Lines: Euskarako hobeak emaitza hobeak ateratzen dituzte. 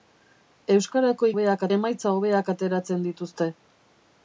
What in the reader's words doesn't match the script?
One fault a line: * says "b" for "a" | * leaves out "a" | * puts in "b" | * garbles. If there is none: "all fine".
all fine